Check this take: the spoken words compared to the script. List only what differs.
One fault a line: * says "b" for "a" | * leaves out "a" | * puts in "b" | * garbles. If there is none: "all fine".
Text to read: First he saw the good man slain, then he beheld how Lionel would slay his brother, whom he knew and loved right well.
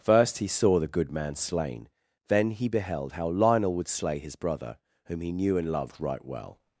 all fine